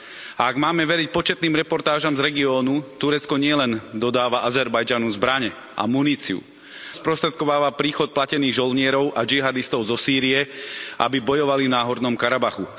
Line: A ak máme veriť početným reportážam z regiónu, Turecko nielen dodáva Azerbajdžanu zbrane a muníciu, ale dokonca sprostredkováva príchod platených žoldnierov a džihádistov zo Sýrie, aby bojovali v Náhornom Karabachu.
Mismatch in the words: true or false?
true